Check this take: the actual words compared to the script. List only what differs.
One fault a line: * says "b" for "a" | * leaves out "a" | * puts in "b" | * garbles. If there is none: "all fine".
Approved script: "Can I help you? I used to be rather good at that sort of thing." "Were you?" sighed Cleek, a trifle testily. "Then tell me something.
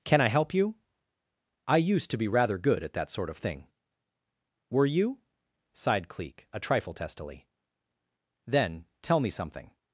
all fine